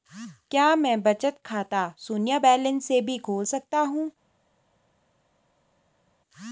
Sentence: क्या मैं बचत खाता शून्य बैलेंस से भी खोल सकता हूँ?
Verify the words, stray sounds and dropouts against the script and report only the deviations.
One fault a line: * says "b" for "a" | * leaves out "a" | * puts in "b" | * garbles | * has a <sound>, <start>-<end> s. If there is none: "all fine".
all fine